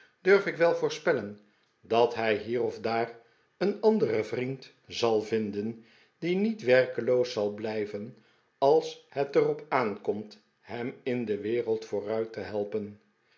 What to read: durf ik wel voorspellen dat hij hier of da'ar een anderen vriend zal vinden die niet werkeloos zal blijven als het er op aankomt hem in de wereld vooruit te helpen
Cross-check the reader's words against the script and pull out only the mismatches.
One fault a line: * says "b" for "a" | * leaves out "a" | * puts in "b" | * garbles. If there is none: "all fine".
all fine